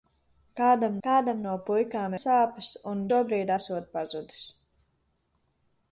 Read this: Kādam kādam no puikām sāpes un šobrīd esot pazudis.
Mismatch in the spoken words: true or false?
false